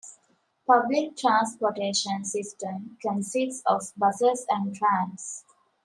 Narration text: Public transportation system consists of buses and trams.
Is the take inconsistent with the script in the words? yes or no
no